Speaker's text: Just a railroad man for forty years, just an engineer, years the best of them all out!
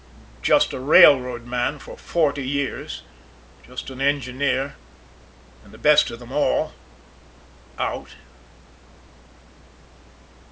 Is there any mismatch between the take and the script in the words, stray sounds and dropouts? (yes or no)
yes